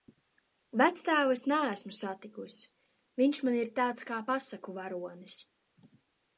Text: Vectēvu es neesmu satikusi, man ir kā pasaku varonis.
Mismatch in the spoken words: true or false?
true